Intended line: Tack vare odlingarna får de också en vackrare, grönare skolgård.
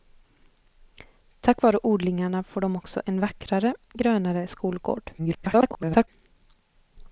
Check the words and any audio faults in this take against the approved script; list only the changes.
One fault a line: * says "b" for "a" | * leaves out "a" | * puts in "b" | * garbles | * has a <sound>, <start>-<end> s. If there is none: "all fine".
* garbles